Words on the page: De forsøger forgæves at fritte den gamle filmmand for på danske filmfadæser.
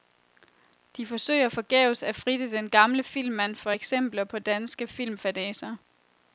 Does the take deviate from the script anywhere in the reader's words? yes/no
yes